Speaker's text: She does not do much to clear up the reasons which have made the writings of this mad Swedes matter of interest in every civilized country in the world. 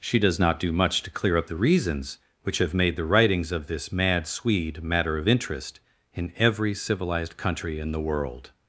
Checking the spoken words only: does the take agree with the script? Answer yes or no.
no